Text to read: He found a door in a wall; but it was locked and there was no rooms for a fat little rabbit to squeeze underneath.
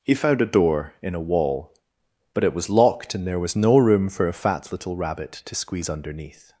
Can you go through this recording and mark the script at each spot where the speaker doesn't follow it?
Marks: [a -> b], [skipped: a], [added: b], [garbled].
He found a door in a wall; but it was locked and there was no [rooms -> room] for a fat little rabbit to squeeze underneath.